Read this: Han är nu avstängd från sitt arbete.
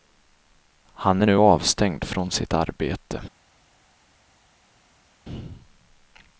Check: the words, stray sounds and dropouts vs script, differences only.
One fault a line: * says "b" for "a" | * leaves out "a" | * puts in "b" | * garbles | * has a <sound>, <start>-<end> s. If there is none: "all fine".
all fine